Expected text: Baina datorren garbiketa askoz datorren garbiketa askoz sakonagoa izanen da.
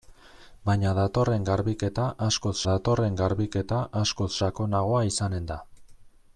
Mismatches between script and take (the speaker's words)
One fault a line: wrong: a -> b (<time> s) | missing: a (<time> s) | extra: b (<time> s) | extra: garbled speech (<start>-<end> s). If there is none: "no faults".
no faults